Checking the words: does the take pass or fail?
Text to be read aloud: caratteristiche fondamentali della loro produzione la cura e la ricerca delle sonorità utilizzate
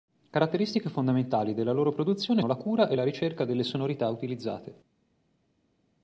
pass